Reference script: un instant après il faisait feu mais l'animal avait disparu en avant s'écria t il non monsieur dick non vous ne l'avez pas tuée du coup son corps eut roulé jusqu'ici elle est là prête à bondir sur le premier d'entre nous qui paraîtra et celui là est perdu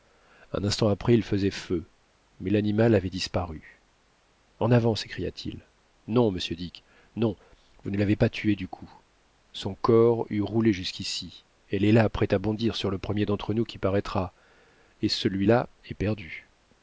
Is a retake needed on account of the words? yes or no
no